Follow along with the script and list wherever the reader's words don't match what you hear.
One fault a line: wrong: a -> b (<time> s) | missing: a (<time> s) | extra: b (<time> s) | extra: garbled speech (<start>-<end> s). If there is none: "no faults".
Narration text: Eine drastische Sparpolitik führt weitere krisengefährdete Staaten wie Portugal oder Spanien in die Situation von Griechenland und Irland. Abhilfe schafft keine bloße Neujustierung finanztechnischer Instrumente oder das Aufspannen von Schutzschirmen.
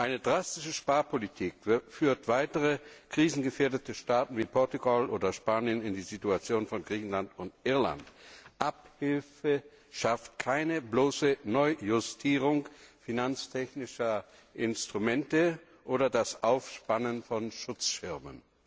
no faults